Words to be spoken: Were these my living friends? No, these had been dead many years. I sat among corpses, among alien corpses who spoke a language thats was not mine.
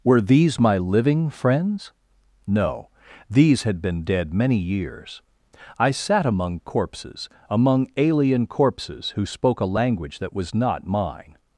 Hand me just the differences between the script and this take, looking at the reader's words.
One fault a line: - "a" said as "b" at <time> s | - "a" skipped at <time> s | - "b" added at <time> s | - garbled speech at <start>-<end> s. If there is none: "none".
- "thats" said as "that" at 10.2 s